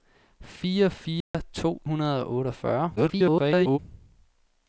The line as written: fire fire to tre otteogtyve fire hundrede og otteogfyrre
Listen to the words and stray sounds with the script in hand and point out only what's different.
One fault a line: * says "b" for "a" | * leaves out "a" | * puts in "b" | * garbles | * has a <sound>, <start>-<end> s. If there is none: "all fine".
* has a dropout, 1.2-1.3 s
* leaves out "tre otteogtyve fire"
* garbles